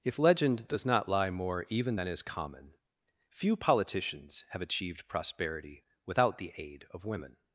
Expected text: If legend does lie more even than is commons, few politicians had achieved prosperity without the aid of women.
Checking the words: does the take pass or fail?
fail